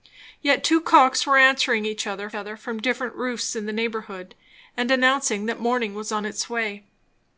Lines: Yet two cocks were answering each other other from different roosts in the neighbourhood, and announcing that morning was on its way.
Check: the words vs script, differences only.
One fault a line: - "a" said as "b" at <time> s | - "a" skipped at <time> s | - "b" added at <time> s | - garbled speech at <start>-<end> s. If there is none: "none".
none